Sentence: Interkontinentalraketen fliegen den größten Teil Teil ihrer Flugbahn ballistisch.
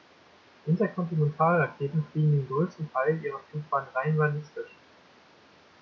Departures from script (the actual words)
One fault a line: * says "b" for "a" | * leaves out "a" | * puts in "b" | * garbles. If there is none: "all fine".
* leaves out "Teil"
* puts in "rein"